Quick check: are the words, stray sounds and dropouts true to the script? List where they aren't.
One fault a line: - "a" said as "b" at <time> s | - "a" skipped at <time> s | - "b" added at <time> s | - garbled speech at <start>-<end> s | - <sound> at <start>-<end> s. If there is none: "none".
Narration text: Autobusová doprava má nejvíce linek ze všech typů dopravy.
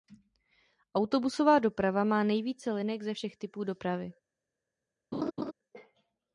- laugh at 5.1-5.5 s